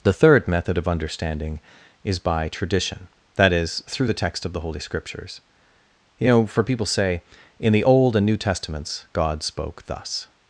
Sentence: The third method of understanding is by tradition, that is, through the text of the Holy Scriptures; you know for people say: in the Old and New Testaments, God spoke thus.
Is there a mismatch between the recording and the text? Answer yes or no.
no